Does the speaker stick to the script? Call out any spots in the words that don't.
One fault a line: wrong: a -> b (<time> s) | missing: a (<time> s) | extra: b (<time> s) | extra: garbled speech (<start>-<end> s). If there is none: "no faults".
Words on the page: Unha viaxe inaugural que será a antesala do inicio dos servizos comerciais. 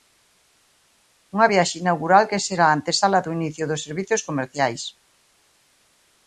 no faults